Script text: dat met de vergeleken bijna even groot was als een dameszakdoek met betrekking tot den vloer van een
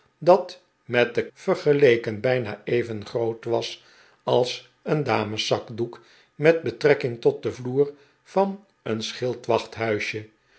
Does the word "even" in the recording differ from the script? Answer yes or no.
no